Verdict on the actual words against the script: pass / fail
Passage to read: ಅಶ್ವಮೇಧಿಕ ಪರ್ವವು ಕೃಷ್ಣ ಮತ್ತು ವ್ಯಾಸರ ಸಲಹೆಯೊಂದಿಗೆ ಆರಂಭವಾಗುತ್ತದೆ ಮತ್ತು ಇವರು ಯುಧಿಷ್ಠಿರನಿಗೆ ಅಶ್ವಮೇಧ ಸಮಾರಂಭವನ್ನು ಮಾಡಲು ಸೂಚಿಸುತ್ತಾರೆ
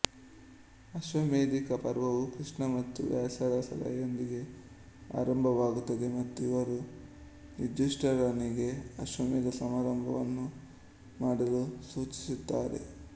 pass